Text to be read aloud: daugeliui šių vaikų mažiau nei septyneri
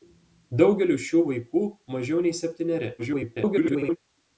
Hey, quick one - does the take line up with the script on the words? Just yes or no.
no